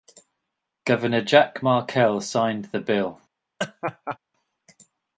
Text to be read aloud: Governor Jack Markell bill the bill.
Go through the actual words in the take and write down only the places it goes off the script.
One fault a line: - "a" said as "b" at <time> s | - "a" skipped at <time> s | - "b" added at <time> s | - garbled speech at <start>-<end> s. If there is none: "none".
- "bill" said as "signed" at 2.2 s